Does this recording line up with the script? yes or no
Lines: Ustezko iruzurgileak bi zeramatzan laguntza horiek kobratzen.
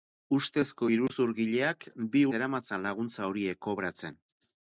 yes